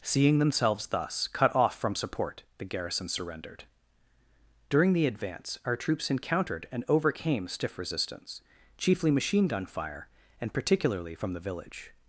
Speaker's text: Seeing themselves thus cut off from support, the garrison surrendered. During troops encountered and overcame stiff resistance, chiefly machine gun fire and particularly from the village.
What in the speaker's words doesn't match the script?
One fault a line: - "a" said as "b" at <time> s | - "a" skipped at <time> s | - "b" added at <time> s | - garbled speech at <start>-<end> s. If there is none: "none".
- "the advance our" added at 4.9 s